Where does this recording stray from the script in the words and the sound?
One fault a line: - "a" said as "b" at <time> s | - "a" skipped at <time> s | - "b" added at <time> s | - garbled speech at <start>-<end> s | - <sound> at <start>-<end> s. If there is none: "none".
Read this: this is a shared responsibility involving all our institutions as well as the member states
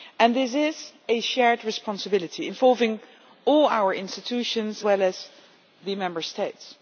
- "as" skipped at 4.8 s